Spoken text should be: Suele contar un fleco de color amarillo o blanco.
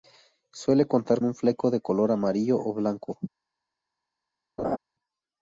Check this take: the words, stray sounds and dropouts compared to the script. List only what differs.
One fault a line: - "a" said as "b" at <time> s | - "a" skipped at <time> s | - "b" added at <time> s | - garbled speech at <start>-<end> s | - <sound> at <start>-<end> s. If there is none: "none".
- laugh at 4.6-4.8 s